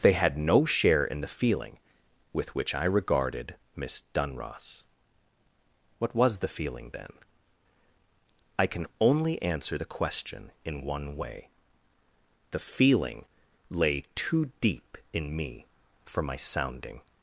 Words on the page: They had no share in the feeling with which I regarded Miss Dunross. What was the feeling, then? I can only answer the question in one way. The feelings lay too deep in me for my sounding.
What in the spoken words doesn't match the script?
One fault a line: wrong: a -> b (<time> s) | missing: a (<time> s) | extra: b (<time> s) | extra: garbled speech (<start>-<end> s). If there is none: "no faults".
wrong: feelings -> feeling (12.6 s)